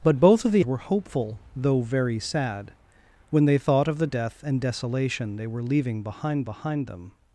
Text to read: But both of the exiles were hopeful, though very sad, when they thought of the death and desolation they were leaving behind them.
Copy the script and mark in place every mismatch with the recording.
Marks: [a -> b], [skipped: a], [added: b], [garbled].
But both of the [skipped: exiles] were hopeful, though very sad, when they thought of the death and desolation they were leaving behind [added: behind] them.